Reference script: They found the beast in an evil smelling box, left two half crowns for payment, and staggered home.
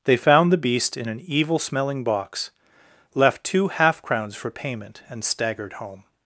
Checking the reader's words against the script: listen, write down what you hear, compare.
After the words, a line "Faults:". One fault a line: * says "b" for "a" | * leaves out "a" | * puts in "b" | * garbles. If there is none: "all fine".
They found the beast in an evil smelling box, left two half crowns for payment, and staggered home.
Faults:
all fine